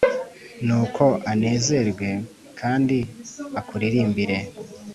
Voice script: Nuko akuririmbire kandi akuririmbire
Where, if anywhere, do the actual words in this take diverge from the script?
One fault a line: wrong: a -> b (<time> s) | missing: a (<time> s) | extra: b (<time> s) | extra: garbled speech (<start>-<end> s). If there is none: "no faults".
wrong: akuririmbire -> anezerwe (1.3 s)